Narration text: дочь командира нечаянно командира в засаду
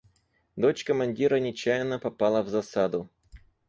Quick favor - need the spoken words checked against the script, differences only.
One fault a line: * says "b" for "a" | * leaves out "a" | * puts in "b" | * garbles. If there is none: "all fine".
* says "попала" for "командира"